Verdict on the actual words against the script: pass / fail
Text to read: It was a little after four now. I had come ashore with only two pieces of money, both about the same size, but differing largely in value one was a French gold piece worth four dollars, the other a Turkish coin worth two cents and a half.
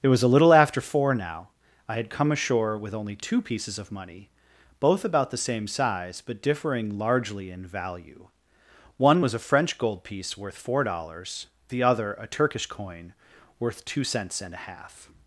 pass